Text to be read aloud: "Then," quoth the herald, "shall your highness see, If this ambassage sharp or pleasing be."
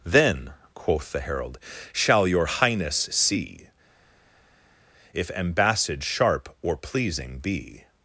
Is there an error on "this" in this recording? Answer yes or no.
yes